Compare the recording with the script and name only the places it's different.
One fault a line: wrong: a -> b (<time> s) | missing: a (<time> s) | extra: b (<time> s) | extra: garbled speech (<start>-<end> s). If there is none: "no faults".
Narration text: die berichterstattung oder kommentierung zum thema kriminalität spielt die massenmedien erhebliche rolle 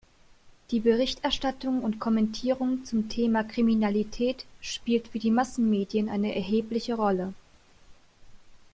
wrong: oder -> und (1.8 s)
extra: für (5.1 s)
extra: eine (6.1 s)